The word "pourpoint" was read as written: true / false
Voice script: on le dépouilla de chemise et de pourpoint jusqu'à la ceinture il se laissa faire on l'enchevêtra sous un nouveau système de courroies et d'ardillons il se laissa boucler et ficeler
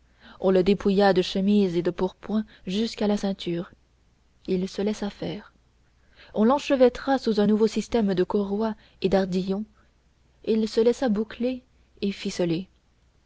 true